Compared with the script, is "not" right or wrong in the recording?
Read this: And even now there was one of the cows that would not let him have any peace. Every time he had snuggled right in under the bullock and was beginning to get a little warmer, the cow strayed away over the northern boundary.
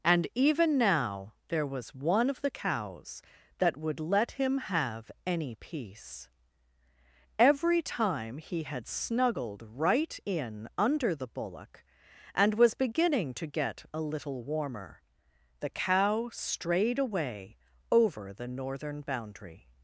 wrong